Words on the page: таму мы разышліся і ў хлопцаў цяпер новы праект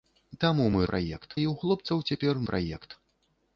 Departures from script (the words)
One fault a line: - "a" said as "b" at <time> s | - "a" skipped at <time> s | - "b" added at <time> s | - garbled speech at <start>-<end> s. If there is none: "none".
- "разышліся" said as "праект" at 0.9 s
- "новы" skipped at 2.4 s